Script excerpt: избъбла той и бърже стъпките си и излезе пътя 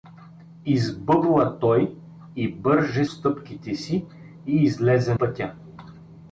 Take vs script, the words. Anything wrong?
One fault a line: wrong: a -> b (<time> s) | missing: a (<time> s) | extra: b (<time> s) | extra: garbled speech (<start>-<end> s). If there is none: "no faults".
no faults